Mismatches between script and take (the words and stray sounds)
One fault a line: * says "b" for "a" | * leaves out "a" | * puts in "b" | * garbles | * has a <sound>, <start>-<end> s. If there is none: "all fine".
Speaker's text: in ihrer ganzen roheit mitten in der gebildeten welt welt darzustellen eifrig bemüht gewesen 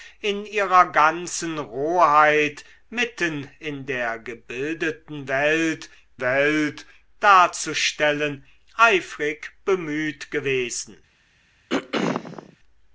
* has a throat clearing, 11.7-12.6 s